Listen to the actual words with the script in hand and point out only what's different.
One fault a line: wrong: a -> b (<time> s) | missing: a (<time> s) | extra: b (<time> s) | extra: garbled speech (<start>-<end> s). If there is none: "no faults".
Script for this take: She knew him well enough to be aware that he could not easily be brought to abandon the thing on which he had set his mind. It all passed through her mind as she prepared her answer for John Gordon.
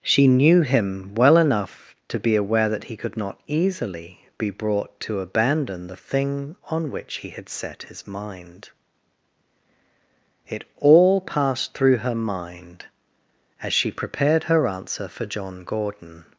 no faults